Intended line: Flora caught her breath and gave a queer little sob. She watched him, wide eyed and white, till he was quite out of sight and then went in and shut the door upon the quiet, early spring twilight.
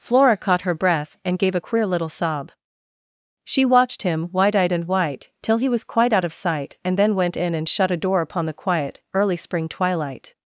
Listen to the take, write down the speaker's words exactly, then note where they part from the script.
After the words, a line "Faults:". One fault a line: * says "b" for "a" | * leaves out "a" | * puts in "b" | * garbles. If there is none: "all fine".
Flora caught her breath and gave a queer little sob. She watched him, wide eyed and white, till he was quite out of sight and then went in and shut a door upon the quiet, early spring twilight.
Faults:
* says "a" for "the"